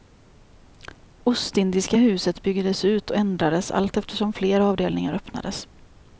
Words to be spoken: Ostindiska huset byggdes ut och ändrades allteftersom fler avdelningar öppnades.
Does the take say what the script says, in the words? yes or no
yes